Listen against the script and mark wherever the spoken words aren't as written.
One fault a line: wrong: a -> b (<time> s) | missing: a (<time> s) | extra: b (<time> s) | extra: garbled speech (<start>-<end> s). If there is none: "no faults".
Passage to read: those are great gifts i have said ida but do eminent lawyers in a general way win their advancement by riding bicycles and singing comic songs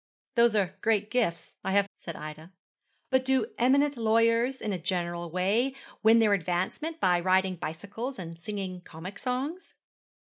no faults